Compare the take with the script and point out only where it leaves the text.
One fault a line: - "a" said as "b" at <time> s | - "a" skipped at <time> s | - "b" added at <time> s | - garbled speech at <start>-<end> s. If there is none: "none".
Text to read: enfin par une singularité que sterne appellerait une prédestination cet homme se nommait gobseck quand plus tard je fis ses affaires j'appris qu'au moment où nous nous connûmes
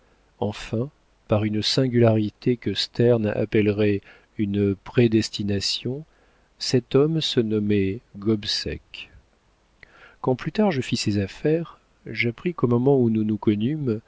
none